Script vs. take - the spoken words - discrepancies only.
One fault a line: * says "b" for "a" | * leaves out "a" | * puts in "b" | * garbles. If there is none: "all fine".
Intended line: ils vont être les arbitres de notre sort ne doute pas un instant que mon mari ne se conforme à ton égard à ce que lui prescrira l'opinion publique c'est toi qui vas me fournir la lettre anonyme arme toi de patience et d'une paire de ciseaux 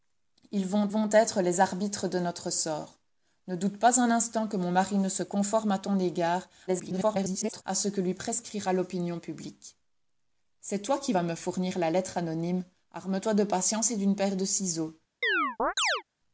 * puts in "vont"
* garbles